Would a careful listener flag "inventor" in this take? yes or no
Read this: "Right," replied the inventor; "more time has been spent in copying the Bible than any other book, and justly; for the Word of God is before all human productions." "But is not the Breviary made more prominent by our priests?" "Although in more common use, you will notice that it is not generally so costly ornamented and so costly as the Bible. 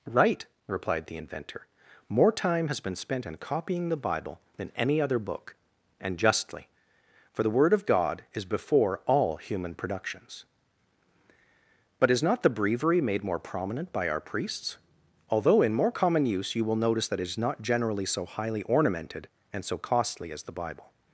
no